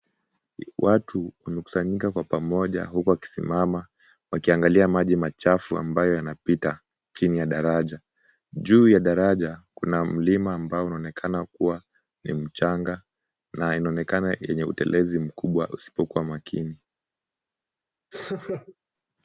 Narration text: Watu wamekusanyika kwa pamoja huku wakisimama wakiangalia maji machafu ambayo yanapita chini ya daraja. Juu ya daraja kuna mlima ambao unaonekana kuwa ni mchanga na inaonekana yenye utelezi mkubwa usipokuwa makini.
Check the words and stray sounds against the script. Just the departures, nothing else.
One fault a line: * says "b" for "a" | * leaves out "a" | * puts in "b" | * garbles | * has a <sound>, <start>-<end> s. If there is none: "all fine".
* has a laugh, 18.1-18.8 s